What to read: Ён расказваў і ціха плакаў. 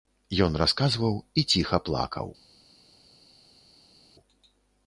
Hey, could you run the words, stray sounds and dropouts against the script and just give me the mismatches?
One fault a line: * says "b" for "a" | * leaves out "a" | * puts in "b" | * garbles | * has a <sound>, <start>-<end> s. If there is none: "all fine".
all fine